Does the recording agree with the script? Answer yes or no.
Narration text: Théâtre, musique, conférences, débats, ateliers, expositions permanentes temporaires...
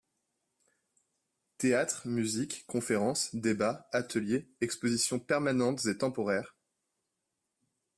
no